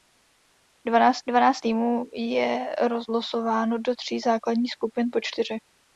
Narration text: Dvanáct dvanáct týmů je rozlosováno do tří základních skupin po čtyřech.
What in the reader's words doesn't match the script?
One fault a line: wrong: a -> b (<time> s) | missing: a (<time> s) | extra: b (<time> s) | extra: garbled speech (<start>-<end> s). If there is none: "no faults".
no faults